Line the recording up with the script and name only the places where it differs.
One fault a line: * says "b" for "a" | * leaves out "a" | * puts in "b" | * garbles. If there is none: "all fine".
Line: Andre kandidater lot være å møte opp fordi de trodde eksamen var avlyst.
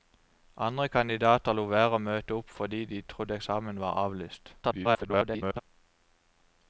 * garbles